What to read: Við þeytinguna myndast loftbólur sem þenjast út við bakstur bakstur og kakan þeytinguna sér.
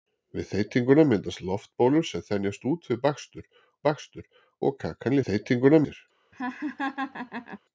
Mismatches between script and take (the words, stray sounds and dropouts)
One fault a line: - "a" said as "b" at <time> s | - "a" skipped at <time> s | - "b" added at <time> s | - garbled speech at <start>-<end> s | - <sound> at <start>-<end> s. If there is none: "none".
- laugh at 6.3-7.6 s